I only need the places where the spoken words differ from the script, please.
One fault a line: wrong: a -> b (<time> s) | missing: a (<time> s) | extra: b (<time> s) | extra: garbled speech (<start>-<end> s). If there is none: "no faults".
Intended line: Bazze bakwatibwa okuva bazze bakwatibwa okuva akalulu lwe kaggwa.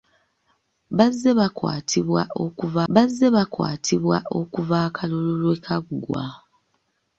no faults